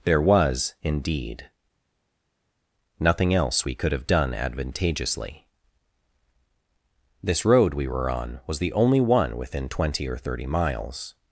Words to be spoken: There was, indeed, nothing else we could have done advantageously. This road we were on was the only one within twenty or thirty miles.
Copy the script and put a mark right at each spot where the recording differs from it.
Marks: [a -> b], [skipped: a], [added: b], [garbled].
There was, indeed, nothing else we could have done advantageously. This road we were on was the only one within twenty or thirty miles.